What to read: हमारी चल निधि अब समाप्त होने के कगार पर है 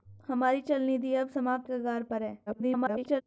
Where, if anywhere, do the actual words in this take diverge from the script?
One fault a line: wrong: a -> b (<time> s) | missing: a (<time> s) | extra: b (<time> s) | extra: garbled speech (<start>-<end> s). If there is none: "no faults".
missing: होने के (1.7 s)
extra: garbled speech (2.5-3.2 s)